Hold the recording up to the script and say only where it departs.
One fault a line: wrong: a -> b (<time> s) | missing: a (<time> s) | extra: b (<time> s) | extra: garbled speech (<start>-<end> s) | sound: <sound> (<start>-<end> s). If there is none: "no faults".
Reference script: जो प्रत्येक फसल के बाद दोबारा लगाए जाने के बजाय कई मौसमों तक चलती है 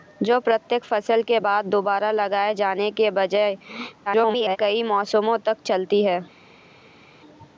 extra: garbled speech (4.1-4.6 s)